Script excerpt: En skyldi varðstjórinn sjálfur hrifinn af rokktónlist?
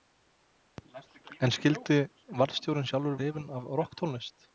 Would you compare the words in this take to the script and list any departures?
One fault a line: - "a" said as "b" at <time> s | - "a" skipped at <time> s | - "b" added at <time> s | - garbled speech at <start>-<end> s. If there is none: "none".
none